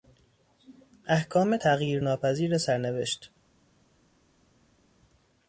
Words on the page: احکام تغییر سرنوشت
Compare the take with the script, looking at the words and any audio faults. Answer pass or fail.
fail